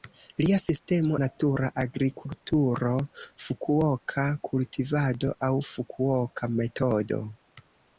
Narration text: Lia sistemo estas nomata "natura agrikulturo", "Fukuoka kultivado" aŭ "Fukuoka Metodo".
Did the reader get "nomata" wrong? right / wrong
wrong